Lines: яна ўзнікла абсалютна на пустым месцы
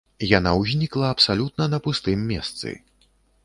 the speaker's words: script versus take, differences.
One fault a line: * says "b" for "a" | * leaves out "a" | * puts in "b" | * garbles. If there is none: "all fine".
all fine